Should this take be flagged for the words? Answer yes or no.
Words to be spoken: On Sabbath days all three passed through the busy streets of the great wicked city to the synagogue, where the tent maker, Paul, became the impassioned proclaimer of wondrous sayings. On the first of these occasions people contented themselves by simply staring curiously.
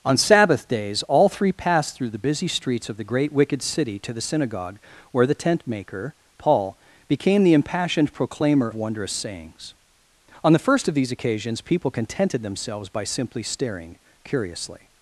yes